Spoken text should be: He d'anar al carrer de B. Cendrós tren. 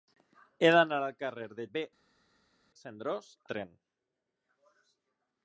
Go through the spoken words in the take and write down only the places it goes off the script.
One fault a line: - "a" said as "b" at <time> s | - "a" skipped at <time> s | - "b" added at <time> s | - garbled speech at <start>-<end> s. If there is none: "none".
none